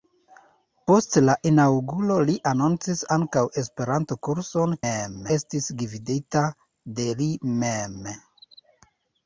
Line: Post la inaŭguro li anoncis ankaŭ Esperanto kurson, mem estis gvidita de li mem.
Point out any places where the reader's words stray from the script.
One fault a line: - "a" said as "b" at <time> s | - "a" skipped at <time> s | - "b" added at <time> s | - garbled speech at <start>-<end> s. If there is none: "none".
none